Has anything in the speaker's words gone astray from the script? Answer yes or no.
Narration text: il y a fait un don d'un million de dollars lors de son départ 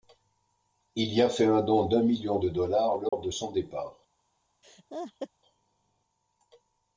no